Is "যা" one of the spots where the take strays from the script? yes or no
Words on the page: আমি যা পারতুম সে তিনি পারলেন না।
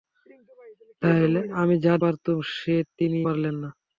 no